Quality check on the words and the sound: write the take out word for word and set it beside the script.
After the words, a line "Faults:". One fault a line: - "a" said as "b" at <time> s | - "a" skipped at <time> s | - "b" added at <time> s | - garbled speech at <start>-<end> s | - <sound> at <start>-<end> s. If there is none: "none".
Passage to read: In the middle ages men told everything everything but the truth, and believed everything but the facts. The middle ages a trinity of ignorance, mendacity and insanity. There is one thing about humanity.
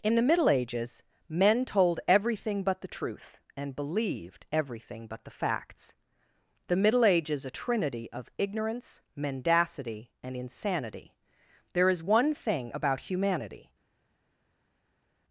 In the middle ages men told everything but the truth, and believed everything but the facts. The middle ages a trinity of ignorance, mendacity and insanity. There is one thing about humanity.
Faults:
- "everything" skipped at 2.6 s